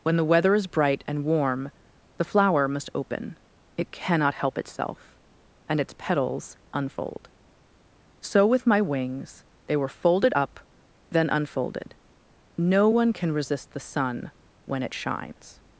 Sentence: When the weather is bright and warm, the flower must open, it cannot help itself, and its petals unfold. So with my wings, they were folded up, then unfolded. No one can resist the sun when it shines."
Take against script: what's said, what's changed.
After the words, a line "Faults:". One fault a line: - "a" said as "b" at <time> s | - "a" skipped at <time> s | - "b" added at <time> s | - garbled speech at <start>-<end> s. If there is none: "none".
When the weather is bright and warm, the flower must open, it cannot help itself, and its petals unfold. So with my wings, they were folded up, then unfolded. No one can resist the sun when it shines."
Faults:
none